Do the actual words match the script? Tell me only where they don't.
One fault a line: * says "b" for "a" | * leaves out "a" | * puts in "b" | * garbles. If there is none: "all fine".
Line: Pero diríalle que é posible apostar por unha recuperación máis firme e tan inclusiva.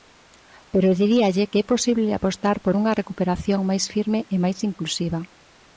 * says "máis" for "tan"